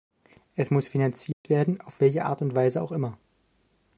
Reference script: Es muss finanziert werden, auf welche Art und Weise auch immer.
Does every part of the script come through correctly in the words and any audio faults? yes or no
no